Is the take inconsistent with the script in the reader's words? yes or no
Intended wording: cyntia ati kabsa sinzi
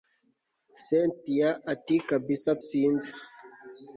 no